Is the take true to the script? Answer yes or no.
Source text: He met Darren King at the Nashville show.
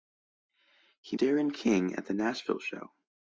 no